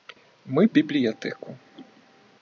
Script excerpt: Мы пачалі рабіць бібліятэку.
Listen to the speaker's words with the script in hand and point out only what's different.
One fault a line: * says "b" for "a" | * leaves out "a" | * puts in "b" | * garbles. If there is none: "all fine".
* leaves out "пачалі рабіць"